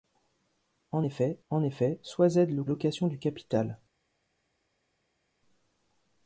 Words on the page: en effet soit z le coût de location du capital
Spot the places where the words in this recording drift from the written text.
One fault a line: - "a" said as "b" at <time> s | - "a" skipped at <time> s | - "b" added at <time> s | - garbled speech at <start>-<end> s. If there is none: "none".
- "en effet" added at 1.5 s
- "coût de" skipped at 2.6 s